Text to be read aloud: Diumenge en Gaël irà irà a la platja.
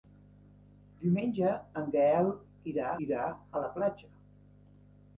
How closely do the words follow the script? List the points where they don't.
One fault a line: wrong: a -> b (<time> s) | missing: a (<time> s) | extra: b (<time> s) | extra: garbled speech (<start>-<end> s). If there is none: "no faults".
no faults